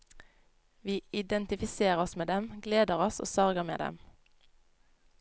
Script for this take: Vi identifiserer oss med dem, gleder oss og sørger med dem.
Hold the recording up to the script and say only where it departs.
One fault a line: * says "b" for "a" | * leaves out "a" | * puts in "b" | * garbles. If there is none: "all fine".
all fine